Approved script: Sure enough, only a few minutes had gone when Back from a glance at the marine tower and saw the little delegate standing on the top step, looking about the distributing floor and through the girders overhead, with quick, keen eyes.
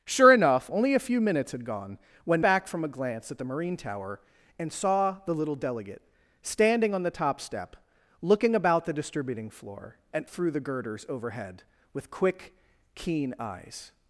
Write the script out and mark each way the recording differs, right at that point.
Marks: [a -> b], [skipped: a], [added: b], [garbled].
Sure enough, only a few minutes had gone when Back from a glance at the marine tower and saw the little delegate standing on the top step, looking about the distributing floor and through the girders overhead, with quick, keen eyes.